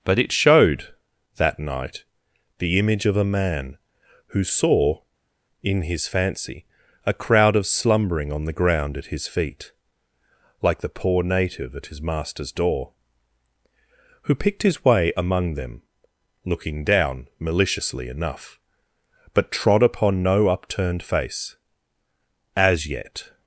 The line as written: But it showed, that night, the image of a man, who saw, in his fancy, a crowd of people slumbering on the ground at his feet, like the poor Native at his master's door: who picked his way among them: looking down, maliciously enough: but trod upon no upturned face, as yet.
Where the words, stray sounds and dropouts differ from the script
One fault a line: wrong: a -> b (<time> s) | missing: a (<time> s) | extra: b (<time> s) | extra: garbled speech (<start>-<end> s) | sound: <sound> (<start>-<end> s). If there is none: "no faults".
missing: people (7.7 s)